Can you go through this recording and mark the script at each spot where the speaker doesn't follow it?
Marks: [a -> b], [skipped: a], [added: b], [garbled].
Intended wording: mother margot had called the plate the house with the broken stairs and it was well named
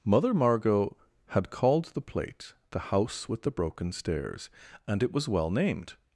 mother margot had called the plate the house with the broken stairs and it was well named